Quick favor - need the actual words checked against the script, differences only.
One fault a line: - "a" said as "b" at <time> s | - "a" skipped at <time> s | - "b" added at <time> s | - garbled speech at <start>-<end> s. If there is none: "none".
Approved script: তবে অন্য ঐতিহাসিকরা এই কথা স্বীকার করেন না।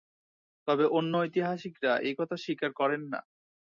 none